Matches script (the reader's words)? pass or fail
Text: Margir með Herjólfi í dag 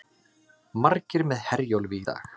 pass